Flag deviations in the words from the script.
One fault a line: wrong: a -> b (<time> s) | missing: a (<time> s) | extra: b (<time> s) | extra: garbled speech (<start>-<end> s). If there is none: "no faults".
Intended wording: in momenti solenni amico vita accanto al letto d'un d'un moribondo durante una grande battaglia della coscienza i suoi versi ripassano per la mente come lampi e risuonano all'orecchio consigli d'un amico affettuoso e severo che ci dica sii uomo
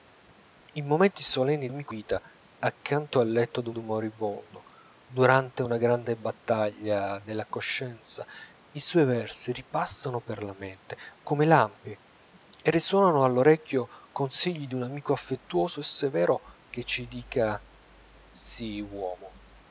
no faults